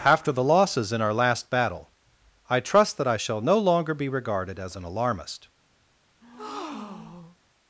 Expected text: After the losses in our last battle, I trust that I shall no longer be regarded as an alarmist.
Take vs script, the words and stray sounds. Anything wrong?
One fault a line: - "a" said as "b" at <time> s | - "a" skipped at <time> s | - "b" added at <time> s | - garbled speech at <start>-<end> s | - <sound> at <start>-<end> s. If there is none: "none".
- breath at 6.2-7.4 s